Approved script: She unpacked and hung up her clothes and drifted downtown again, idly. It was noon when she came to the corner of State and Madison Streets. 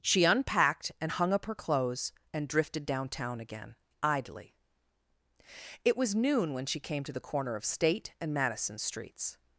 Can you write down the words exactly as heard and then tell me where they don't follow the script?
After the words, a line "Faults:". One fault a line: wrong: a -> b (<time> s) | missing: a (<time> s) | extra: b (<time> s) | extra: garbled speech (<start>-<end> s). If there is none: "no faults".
She unpacked and hung up her clothes and drifted downtown again, idly. It was noon when she came to the corner of State and Madison Streets.
Faults:
no faults